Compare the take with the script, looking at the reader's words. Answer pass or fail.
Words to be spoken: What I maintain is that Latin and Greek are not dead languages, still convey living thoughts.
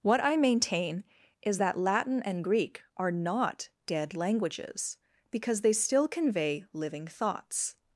fail